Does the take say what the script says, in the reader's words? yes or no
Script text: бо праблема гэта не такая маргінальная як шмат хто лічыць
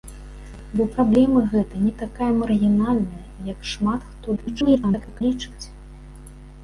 no